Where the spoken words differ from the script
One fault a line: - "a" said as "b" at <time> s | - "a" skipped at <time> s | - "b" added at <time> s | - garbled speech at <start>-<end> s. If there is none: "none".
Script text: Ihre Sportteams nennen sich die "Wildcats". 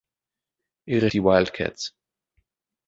- "Sportteams nennen sich" skipped at 1.1 s